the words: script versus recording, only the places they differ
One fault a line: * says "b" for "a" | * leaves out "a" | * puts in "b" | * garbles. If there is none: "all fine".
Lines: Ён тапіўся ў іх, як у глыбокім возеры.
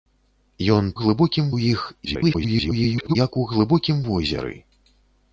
* says "глыбокім" for "тапіўся"
* garbles